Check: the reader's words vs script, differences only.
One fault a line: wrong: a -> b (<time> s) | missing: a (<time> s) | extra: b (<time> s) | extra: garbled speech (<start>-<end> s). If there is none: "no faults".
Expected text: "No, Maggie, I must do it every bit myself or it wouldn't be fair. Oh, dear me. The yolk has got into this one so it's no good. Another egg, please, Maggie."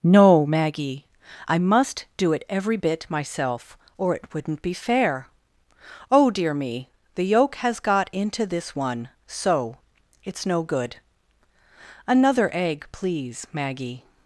no faults